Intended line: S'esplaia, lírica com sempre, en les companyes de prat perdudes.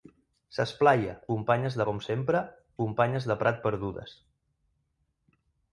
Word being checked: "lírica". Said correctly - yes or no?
no